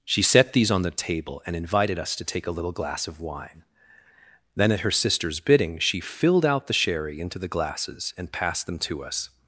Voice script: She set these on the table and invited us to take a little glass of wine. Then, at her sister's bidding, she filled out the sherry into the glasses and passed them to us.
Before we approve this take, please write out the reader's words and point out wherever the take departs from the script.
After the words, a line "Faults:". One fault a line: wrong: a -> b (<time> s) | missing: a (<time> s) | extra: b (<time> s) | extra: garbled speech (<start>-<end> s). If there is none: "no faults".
She set these on the table and invited us to take a little glass of wine. Then, at her sister's bidding, she filled out the sherry into the glasses and passed them to us.
Faults:
no faults